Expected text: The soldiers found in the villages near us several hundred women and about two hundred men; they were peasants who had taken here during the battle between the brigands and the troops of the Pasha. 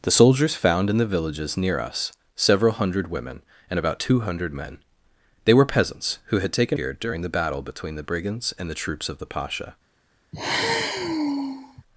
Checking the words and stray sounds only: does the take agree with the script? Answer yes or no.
no